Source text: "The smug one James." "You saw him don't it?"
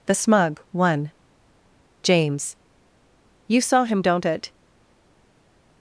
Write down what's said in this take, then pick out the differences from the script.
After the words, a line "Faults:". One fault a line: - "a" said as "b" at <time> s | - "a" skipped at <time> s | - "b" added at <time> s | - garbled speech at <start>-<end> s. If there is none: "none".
"The smug one James." "You saw him don't it?"
Faults:
none